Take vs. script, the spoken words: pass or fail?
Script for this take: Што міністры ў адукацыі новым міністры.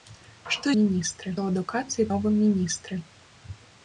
pass